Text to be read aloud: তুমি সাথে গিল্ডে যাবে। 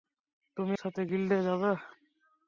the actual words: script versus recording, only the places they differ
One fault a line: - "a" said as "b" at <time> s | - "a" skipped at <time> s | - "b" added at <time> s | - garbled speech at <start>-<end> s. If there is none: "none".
none